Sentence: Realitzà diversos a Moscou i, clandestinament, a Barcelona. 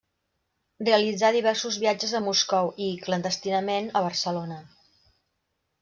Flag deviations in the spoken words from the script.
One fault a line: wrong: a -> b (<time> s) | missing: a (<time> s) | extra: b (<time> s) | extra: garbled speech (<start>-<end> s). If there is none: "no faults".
extra: viatges (1.8 s)